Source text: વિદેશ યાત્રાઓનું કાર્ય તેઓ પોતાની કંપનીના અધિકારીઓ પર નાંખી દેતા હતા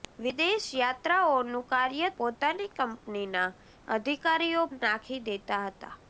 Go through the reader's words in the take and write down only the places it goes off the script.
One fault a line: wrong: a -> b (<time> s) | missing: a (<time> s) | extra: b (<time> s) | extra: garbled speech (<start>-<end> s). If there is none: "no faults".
missing: તેઓ (2.1 s)
missing: પર (4.6 s)